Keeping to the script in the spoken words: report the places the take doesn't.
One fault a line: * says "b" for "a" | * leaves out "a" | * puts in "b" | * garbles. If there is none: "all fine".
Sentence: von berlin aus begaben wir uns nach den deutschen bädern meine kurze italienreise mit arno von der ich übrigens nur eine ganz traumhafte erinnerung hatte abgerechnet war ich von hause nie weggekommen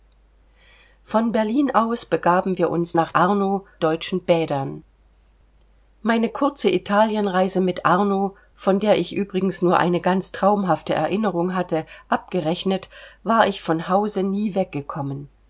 * says "arno" for "den"